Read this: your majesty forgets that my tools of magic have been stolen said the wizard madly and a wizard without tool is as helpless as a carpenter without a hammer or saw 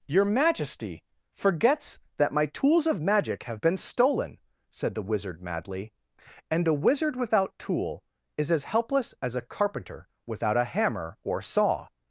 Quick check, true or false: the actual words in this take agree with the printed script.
true